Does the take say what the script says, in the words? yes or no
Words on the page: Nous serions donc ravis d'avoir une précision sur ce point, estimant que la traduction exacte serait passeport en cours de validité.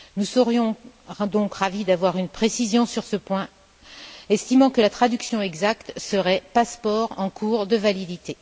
yes